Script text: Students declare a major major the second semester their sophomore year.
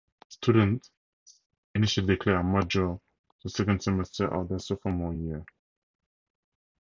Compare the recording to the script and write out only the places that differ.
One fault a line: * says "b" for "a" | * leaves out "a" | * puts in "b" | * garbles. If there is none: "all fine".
* puts in "initially"
* leaves out "major"
* puts in "of"